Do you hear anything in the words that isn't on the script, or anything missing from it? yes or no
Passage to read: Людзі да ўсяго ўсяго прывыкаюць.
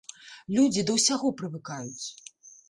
yes